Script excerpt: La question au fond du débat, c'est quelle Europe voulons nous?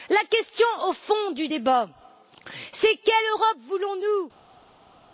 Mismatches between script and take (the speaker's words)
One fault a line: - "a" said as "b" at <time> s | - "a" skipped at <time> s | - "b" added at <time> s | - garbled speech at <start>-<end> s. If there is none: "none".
none